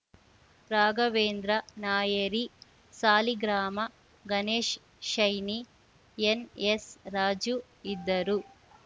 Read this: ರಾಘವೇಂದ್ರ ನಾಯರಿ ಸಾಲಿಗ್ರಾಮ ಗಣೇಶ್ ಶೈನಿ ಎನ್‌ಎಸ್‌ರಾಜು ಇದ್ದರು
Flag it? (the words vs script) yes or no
no